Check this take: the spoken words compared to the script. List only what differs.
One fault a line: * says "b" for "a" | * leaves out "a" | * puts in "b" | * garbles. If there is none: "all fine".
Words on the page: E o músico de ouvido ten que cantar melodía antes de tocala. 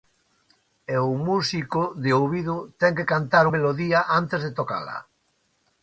all fine